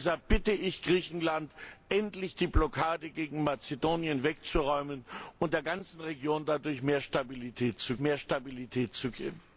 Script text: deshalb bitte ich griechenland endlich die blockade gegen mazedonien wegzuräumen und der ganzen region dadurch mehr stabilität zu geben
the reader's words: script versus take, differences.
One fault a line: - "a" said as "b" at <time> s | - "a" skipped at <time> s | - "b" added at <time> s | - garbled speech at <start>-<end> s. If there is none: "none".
- "mehr stabilität zu" added at 8.0 s